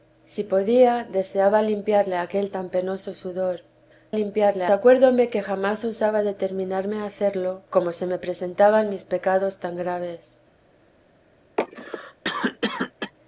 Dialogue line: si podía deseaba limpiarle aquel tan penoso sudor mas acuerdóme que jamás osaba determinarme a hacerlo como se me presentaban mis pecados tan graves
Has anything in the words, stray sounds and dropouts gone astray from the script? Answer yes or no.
yes